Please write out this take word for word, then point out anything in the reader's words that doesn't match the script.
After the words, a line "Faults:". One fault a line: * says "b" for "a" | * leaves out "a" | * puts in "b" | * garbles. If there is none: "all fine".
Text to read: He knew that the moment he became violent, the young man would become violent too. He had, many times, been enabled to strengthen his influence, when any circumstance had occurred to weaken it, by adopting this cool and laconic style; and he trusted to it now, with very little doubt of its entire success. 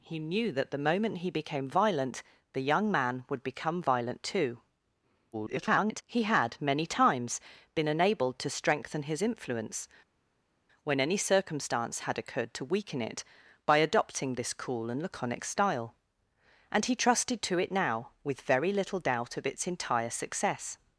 He knew that the moment he became violent, the young man would become violent too. [garbled] He had, many times, been enabled to strengthen his influence, when any circumstance had occurred to weaken it, by adopting this cool and laconic style; and he trusted to it now, with very little doubt of its entire success.
Faults:
* garbles